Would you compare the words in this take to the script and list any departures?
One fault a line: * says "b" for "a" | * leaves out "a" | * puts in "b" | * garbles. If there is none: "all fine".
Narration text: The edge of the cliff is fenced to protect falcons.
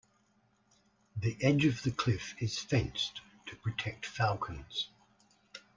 all fine